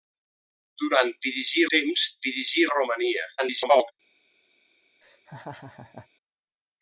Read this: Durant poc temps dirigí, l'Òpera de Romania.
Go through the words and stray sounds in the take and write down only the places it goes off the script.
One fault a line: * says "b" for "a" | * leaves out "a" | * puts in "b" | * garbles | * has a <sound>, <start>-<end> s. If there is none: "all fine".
* says "dirigí" for "poc"
* leaves out "l'Òpera"
* garbles
* has a laugh, 5.0-6.1 s